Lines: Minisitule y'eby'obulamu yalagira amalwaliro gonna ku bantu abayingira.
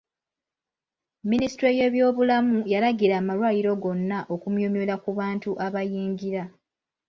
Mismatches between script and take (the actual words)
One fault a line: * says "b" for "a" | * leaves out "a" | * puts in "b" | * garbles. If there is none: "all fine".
* puts in "okumyumyula"